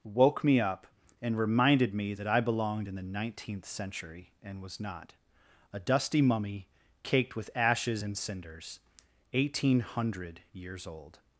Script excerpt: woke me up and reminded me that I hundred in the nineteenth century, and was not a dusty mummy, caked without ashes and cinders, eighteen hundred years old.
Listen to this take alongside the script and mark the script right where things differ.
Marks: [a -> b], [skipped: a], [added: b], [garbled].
woke me up and reminded me that I [hundred -> belonged] in the nineteenth century, and was not a dusty mummy, caked [without -> with] ashes and cinders, eighteen hundred years old.